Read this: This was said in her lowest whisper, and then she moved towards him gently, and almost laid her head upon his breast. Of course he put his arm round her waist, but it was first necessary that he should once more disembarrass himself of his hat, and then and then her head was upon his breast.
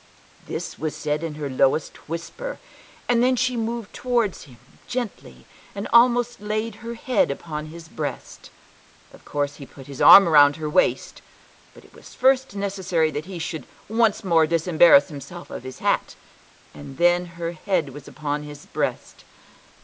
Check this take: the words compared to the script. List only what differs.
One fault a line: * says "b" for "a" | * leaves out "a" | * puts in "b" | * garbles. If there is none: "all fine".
* leaves out "and then"